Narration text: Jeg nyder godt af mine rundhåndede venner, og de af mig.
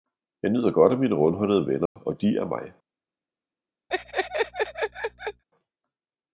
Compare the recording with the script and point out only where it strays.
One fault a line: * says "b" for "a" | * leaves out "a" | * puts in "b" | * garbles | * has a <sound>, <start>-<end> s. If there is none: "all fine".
* has a dropout, 1.9-2.0 s
* has a laugh, 3.9-5.4 s